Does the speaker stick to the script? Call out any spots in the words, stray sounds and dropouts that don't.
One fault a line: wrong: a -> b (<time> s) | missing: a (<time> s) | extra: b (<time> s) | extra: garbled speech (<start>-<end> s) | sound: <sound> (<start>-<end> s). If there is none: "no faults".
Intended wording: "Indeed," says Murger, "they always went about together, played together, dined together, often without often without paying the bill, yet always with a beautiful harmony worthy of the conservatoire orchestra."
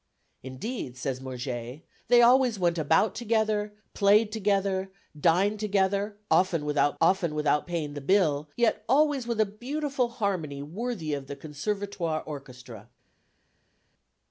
no faults